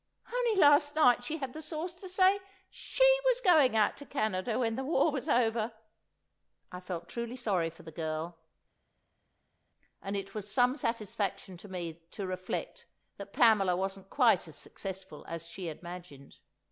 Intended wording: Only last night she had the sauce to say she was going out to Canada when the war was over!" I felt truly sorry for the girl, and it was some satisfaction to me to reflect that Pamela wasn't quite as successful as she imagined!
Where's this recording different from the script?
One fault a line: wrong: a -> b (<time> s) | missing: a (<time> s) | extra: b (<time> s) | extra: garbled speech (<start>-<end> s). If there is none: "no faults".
no faults